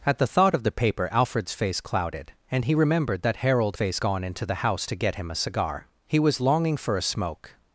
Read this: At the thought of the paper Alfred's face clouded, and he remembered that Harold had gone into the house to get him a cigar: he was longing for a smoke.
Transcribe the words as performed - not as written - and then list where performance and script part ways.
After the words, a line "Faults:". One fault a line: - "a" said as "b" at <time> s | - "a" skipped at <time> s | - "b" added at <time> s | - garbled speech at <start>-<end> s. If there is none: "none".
At the thought of the paper Alfred's face clouded, and he remembered that Harold face gone into the house to get him a cigar: he was longing for a smoke.
Faults:
- "had" said as "face" at 3.7 s